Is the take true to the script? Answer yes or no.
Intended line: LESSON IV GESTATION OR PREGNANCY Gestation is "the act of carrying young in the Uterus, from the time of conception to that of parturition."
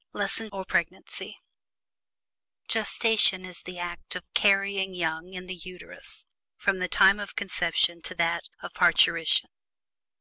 no